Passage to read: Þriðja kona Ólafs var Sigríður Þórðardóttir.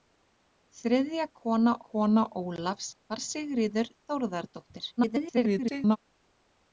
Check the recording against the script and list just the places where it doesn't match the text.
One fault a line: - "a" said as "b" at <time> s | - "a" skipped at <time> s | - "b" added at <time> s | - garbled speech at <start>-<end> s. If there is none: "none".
- "kona" added at 1.9 s
- garbled speech at 5.0-6.0 s